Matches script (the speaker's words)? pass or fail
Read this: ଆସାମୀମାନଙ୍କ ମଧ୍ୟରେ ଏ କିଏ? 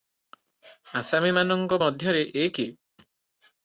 pass